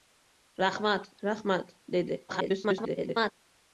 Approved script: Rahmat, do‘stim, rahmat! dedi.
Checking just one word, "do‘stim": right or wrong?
wrong